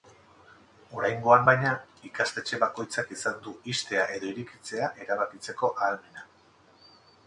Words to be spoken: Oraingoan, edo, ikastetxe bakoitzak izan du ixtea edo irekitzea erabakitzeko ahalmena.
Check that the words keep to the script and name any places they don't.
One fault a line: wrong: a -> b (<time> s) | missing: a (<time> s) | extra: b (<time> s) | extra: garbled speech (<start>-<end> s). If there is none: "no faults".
wrong: edo -> baina (1.5 s)